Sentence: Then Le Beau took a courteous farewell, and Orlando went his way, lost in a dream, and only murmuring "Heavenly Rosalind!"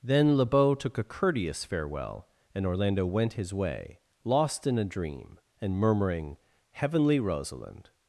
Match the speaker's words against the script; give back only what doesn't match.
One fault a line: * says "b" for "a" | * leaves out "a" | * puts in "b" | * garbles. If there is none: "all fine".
* leaves out "only"